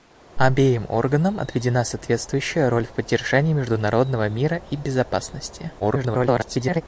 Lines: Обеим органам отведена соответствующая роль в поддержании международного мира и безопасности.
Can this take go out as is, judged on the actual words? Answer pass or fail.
fail